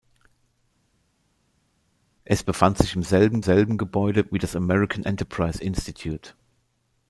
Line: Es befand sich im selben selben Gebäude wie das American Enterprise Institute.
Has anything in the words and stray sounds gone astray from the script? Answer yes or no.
no